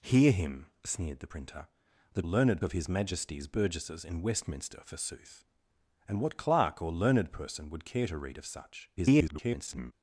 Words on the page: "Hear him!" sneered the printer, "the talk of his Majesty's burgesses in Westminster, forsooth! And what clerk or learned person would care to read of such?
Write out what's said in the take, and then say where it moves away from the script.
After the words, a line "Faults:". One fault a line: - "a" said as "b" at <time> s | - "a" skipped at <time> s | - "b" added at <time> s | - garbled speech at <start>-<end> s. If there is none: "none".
"Hear him!" sneered the printer, "the learned of his Majesty's burgesses in Westminster, forsooth! And what clerk or learned person would care to read of such? [garbled]
Faults:
- "talk" said as "learned" at 2.2 s
- garbled speech at 9.0-9.9 s